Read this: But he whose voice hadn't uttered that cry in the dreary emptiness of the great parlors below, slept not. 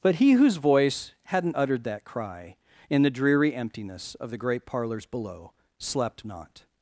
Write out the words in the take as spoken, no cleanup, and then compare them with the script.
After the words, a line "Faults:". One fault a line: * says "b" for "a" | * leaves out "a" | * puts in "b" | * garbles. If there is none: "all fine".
But he whose voice hadn't uttered that cry in the dreary emptiness of the great parlors below, slept not.
Faults:
all fine